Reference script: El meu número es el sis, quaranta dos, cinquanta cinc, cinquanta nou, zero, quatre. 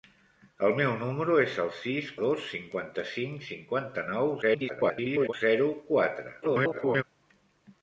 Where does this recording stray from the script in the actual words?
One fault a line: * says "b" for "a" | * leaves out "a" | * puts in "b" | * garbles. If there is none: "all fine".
* leaves out "quaranta"
* garbles
* garbles